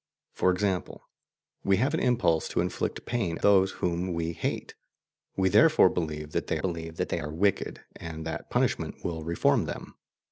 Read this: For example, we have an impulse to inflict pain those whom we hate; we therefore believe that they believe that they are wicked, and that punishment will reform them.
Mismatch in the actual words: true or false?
false